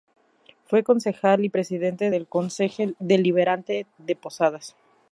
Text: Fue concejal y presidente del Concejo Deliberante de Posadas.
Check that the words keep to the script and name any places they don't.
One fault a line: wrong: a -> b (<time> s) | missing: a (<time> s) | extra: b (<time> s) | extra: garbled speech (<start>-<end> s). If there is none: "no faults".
no faults